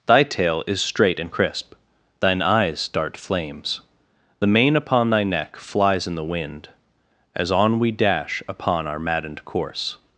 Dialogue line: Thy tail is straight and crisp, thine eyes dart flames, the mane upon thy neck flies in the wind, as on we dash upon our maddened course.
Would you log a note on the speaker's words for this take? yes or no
no